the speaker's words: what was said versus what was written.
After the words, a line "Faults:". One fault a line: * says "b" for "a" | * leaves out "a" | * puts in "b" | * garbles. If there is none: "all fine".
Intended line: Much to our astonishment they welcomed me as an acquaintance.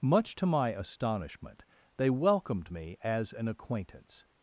Much to my astonishment they welcomed me as an acquaintance.
Faults:
* says "my" for "our"